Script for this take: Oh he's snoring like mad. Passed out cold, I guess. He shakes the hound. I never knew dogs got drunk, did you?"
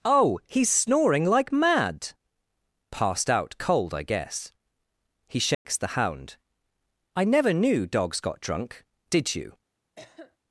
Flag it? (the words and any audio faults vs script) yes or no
yes